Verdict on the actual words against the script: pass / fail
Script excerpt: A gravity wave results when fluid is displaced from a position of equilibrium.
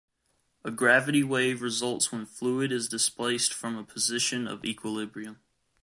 pass